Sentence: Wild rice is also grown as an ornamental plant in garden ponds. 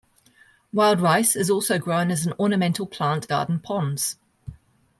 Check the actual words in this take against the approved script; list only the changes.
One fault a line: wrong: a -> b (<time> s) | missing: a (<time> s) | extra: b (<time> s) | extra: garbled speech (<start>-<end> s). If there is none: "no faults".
missing: in (3.3 s)